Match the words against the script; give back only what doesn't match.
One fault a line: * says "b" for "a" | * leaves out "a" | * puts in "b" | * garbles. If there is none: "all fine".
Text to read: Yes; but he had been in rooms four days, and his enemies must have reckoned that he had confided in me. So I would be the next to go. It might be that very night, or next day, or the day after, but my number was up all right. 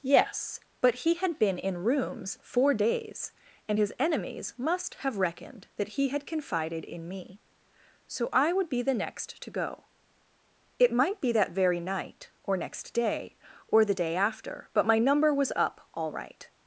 all fine